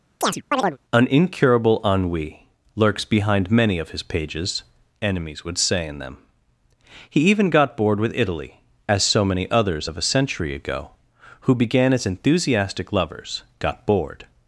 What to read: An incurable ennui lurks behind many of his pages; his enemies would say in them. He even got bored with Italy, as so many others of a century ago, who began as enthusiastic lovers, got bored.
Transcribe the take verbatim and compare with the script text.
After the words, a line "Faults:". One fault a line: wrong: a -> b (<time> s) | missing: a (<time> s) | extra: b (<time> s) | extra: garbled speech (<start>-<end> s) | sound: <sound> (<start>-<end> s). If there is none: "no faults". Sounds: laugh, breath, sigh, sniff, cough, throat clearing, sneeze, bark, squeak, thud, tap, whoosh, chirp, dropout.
An incurable ennui lurks behind many of his pages; enemies would say in them. He even got bored with Italy, as so many others of a century ago, who began as enthusiastic lovers, got bored.
Faults:
sound: chirp (0.2-0.8 s)
missing: his (4.6 s)